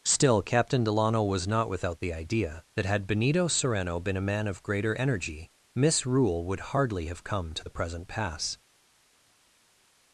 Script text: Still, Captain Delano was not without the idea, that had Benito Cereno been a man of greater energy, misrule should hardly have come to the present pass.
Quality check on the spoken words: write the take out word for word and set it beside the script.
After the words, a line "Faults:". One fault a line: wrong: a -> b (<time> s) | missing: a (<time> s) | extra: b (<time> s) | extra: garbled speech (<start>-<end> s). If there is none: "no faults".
Still, Captain Delano was not without the idea, that had Benito Cereno been a man of greater energy, misrule would hardly have come to the present pass.
Faults:
wrong: should -> would (6.4 s)